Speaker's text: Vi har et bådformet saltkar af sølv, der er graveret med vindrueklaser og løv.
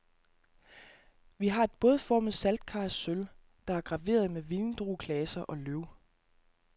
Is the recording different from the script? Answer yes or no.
no